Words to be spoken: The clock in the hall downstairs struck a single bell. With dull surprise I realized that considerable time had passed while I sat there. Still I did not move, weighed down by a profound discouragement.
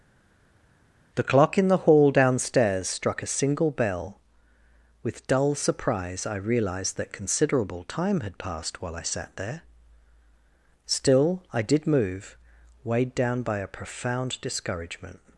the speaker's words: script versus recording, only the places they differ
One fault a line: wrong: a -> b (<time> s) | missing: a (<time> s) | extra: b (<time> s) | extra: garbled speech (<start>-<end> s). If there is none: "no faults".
missing: not (11.9 s)